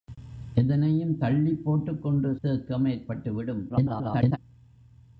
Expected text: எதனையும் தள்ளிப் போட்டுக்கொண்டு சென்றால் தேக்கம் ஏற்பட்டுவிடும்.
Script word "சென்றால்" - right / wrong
wrong